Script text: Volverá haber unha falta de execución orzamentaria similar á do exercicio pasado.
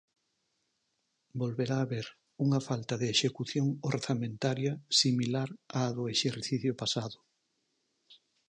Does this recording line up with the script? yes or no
yes